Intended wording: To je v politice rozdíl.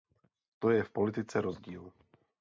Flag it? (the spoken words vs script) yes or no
no